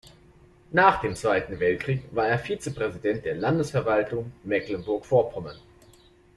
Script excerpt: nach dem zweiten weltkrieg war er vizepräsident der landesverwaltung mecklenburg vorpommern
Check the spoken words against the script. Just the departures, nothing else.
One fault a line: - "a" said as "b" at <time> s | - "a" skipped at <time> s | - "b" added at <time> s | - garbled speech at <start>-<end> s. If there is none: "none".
none